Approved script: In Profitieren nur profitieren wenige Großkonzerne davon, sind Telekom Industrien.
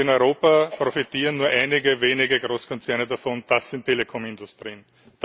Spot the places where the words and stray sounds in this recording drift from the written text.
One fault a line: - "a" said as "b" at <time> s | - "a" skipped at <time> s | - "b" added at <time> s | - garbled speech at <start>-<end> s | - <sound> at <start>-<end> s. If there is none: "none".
- "Europa" added at 0.1 s
- "profitieren" said as "einige" at 1.5 s
- "das" added at 3.5 s